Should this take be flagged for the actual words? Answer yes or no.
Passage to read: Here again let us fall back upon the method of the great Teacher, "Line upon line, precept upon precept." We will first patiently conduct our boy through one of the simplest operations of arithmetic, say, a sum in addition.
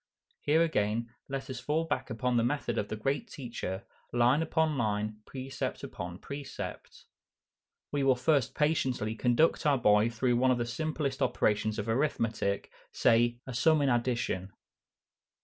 no